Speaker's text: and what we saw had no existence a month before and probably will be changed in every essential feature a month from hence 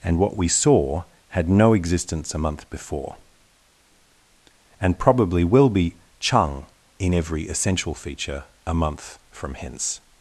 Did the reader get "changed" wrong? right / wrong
wrong